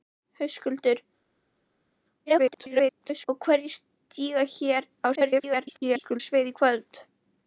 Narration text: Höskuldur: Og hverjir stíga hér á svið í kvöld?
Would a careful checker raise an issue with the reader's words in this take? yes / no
yes